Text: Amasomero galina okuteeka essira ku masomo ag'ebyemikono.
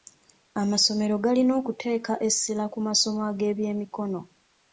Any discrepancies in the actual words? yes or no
no